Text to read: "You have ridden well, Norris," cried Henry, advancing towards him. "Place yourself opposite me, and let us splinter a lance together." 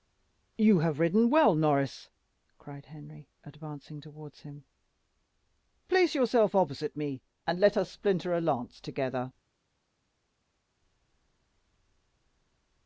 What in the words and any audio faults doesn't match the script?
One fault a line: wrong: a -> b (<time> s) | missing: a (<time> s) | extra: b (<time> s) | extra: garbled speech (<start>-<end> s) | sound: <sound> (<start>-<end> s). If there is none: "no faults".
no faults